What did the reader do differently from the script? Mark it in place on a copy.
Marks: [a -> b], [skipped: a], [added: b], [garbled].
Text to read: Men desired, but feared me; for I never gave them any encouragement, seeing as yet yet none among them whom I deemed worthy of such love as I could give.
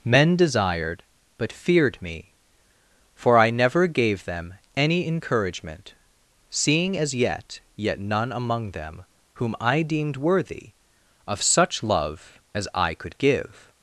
Men desired, but feared me; for I never gave them any encouragement, seeing as yet yet none among them whom I deemed worthy of such love as I could give.